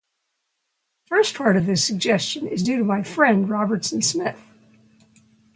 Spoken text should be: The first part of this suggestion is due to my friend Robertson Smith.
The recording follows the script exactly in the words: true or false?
true